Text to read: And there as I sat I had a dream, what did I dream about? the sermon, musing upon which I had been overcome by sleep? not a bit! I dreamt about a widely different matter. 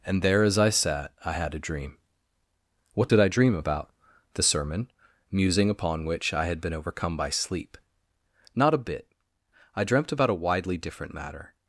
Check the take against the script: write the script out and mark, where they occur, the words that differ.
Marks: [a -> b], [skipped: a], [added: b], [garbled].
And there as I sat I had a dream, what did I dream about? the sermon, musing upon which I had been overcome by sleep? not a bit! I dreamt about a widely different matter.